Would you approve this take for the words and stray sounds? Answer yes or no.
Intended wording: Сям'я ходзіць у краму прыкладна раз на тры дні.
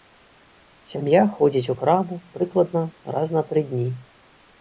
yes